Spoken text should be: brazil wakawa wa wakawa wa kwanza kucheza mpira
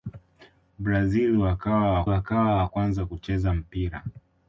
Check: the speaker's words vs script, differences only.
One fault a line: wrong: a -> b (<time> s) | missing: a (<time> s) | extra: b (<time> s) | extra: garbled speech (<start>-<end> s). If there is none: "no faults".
no faults